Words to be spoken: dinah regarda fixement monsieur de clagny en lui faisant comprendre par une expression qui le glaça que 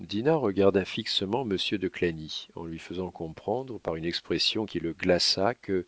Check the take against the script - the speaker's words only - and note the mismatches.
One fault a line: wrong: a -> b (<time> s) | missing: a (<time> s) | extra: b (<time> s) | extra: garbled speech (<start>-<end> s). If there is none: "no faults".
no faults